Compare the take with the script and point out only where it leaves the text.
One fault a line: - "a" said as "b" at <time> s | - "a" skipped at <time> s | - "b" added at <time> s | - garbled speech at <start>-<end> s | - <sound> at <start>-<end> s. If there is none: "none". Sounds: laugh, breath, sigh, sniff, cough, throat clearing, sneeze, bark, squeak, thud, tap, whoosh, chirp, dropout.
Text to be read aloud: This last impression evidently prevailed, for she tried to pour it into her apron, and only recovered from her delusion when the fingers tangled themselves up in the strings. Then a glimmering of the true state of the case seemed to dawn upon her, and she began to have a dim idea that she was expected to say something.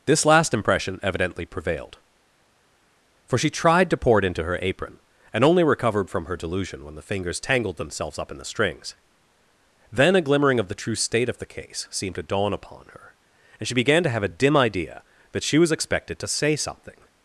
none